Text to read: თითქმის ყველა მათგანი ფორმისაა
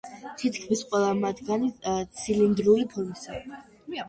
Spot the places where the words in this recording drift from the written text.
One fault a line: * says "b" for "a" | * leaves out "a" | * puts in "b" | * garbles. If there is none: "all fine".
* puts in "ცილინდრული"